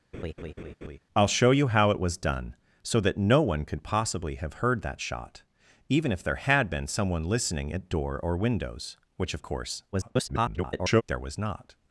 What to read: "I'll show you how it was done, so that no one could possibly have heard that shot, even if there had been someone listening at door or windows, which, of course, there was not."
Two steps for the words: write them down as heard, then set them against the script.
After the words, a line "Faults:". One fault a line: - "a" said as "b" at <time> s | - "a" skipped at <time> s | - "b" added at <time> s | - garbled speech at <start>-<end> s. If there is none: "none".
"I'll show you how it was done, so that no one could possibly have heard that shot, even if there had been someone listening at door or windows, which, of course, [garbled] there was not."
Faults:
- garbled speech at 9.9-11.0 s